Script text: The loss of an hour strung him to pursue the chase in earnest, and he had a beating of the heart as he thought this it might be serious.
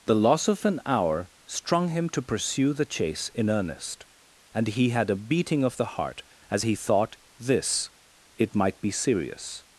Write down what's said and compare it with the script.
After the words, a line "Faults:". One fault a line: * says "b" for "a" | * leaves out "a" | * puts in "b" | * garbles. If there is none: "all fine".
The loss of an hour strung him to pursue the chase in earnest, and he had a beating of the heart as he thought this it might be serious.
Faults:
all fine